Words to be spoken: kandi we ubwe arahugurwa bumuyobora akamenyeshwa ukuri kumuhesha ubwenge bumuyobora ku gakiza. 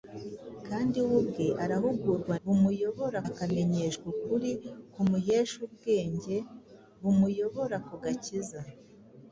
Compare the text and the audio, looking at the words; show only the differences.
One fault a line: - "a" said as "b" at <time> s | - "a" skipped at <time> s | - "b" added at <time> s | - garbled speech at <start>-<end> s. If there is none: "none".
none